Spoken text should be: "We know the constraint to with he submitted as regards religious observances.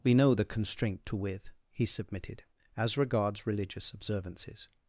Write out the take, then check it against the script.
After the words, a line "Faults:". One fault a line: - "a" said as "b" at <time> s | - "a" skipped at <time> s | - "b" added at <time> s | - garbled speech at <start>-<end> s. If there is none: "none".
"We know the constraint to with he submitted as regards religious observances.
Faults:
none